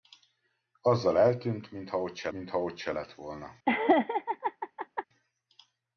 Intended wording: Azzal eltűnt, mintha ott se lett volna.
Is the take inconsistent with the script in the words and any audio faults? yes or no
yes